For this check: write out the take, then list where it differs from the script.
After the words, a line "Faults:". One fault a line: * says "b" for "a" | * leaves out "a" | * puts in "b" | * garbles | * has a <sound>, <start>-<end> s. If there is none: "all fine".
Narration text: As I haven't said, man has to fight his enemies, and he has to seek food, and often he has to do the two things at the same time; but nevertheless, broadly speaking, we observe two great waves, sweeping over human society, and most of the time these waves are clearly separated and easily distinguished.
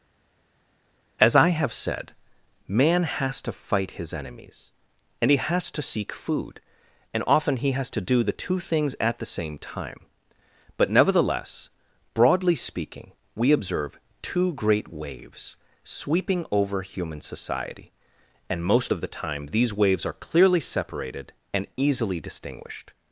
As I have said, man has to fight his enemies, and he has to seek food, and often he has to do the two things at the same time; but nevertheless, broadly speaking, we observe two great waves, sweeping over human society, and most of the time these waves are clearly separated and easily distinguished.
Faults:
* says "have" for "haven't"